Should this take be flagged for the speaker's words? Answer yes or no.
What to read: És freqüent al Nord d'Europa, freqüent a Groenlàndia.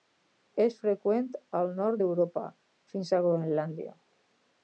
yes